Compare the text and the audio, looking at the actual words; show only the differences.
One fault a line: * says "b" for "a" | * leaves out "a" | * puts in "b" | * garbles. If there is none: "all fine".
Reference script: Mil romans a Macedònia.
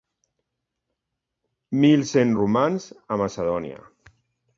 * puts in "cent"